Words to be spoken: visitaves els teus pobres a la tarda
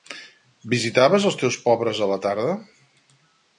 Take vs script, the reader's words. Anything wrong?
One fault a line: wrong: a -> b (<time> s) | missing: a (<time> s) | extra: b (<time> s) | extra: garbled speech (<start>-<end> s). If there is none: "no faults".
no faults